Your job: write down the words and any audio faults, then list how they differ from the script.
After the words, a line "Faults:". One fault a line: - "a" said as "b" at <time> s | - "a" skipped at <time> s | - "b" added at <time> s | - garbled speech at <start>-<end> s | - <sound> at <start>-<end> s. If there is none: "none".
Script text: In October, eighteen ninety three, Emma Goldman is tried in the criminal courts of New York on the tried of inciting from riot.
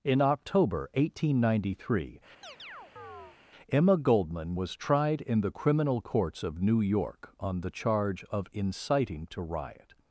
In October, eighteen ninety three, Emma Goldman was tried in the criminal courts of New York on the charge of inciting to riot.
Faults:
- chirp at 2.4-3.4 s
- "is" said as "was" at 4.5 s
- "tried" said as "charge" at 7.7 s
- "from" said as "to" at 9.3 s